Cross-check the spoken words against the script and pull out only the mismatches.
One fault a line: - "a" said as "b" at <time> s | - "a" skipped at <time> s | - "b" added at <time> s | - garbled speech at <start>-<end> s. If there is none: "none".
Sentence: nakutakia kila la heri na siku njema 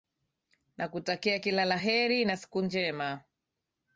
none